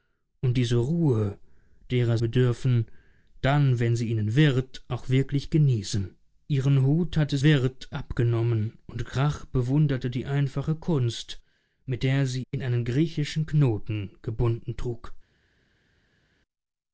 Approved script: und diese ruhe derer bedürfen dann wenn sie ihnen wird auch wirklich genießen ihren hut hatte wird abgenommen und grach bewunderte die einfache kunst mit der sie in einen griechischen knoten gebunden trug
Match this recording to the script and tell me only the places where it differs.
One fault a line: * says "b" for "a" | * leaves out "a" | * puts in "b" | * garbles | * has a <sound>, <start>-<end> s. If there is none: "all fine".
all fine